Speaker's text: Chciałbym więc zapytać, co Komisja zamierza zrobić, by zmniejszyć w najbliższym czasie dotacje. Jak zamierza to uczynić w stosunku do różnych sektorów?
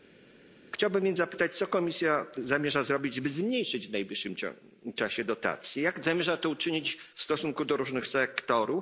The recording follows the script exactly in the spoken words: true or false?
true